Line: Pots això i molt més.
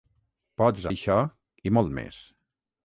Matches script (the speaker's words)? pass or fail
pass